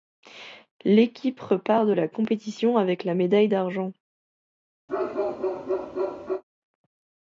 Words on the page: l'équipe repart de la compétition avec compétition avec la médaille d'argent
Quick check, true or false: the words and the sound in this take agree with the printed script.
false